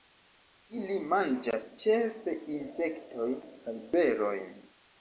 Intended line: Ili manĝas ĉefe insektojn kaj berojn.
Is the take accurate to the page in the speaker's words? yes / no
yes